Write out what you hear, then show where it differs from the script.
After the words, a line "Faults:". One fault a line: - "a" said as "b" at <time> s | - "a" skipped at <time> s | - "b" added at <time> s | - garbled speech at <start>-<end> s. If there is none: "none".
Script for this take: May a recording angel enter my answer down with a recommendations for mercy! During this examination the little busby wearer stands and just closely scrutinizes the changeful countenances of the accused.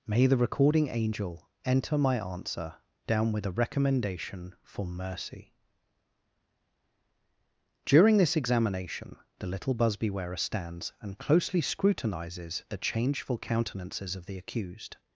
May the recording angel enter my answer down with a recommendation for mercy! During this examination the little busby wearer stands and closely scrutinizes the changeful countenances of the accused.
Faults:
- "a" said as "the" at 0.2 s
- "recommendations" said as "recommendation" at 3.5 s
- "just" skipped at 11.2 s